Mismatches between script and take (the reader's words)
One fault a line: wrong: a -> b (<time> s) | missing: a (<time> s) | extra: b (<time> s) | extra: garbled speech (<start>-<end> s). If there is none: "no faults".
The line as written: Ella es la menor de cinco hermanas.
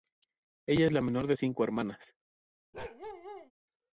no faults